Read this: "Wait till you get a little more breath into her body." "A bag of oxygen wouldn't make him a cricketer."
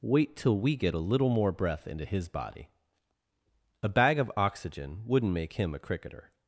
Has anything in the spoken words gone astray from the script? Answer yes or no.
yes